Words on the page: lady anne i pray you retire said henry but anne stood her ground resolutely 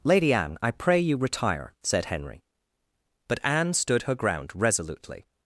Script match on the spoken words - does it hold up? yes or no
yes